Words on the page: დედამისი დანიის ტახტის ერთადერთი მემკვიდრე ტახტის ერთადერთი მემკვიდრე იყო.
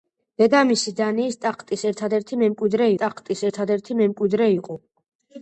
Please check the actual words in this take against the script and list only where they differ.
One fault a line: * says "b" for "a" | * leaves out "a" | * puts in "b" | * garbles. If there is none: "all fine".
all fine